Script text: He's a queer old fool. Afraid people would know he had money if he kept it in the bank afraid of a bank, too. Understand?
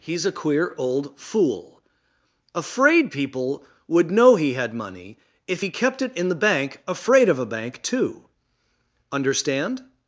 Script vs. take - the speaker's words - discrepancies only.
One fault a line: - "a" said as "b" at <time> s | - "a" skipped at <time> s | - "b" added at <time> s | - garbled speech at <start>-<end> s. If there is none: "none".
none